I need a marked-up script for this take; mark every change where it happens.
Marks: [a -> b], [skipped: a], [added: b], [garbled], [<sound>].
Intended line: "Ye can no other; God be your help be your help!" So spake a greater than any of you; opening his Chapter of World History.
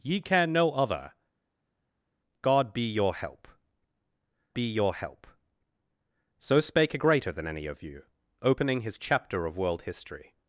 "Ye can no other; God be your help be your help!" So spake a greater than any of you; opening his Chapter of World History.